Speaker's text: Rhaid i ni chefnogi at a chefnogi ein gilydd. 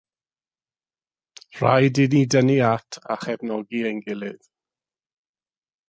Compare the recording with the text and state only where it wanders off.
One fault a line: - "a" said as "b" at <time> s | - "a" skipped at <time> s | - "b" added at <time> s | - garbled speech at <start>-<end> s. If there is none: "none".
- "chefnogi" said as "dynnu" at 2.4 s